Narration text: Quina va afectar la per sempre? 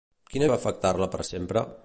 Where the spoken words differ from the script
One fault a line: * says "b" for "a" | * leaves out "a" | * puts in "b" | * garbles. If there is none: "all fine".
all fine